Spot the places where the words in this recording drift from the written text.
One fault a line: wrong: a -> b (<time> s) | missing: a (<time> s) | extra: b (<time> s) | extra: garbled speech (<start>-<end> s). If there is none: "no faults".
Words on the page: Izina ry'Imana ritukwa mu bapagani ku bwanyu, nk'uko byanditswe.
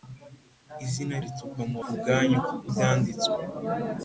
missing: ry'Imana (1.1 s)
missing: bapagani (1.8 s)
missing: nk'uko (2.4 s)